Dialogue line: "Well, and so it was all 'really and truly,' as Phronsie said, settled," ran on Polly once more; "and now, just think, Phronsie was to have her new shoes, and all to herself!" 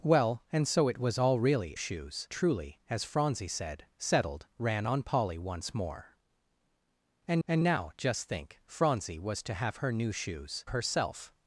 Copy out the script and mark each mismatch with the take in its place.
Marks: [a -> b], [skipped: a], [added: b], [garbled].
"Well, and so it was all 'really [and -> shoes] truly,' as Phronsie said, settled," ran on Polly once more; "and [added: and] now, just think, Phronsie was to have her new shoes, [skipped: and all to] herself!"